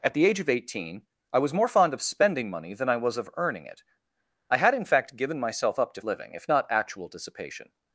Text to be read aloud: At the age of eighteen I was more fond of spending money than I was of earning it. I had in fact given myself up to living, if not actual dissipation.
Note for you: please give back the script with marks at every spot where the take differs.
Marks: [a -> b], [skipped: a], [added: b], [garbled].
At the age of eighteen I was more fond of spending money than I was of earning it. I had in fact given myself up to living, if not actual dissipation.